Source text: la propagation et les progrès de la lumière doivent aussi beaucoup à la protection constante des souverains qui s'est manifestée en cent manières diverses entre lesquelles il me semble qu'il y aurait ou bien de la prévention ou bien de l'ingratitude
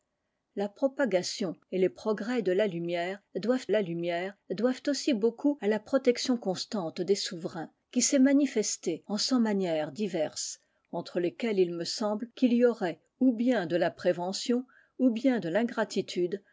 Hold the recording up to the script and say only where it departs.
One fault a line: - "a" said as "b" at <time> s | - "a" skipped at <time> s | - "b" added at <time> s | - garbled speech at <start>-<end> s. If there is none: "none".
- "la lumière doivent" added at 3.7 s